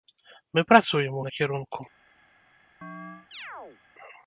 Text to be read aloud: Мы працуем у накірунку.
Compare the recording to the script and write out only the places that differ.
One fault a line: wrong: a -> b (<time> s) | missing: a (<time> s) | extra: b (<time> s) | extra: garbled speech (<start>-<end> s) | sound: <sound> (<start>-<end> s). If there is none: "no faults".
sound: chirp (2.8-3.8 s)